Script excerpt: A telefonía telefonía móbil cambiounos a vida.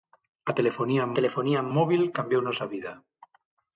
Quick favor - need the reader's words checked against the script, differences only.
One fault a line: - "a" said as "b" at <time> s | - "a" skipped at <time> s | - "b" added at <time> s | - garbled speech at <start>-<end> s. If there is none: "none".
none